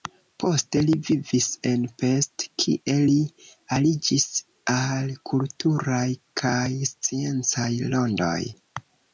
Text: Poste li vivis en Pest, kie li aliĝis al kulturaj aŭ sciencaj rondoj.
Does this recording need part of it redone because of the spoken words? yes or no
yes